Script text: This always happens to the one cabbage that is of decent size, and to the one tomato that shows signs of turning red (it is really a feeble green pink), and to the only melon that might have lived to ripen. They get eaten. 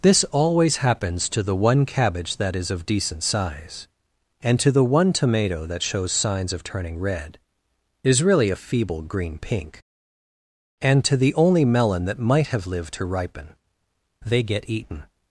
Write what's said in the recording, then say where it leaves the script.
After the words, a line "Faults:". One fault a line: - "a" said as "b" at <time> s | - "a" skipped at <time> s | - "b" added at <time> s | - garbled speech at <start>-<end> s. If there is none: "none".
This always happens to the one cabbage that is of decent size, and to the one tomato that shows signs of turning red is really a feeble green pink), and to the only melon that might have lived to ripen. They get eaten.
Faults:
- "it" skipped at 7.4 s